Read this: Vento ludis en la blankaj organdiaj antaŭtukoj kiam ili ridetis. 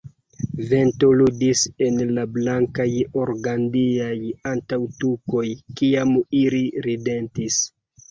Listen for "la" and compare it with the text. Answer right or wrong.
right